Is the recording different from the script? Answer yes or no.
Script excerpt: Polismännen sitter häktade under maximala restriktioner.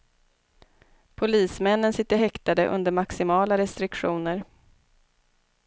no